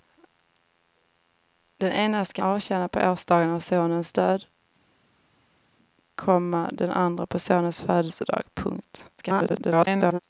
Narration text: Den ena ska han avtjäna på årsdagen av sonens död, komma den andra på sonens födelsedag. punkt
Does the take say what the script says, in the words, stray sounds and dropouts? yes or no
no